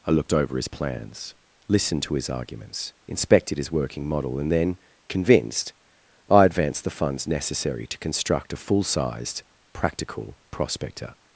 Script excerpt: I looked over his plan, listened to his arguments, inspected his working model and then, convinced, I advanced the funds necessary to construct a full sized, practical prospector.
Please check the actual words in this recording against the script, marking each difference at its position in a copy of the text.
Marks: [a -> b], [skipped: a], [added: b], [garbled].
I looked over his [plan, -> plans] listened to his arguments, inspected his working model and then, convinced, I advanced the funds necessary to construct a full sized, practical prospector.